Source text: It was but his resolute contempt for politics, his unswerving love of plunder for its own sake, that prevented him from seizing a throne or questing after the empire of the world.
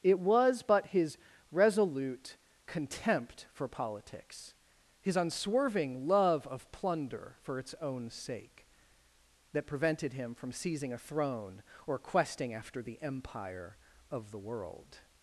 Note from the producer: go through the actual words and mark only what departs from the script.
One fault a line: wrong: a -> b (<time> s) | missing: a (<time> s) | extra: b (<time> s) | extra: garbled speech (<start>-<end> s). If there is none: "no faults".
no faults